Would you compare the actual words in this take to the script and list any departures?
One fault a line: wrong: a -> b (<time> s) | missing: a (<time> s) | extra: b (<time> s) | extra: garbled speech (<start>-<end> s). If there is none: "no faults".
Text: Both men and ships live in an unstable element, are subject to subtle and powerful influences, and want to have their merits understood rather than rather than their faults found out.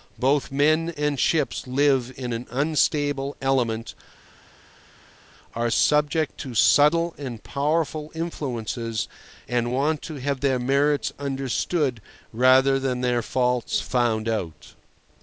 missing: rather than (13.0 s)